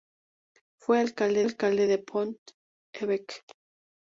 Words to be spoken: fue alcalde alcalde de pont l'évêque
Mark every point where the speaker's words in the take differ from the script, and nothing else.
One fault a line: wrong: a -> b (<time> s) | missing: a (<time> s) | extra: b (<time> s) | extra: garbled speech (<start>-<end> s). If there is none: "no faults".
no faults